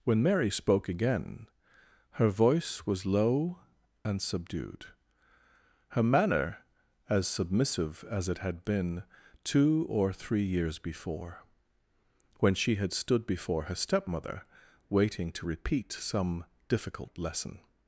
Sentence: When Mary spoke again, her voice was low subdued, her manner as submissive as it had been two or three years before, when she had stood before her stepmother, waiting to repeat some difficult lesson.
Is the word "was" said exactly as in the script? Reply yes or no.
yes